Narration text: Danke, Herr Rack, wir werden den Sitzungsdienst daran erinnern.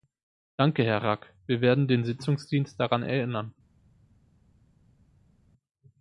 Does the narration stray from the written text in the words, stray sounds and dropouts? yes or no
no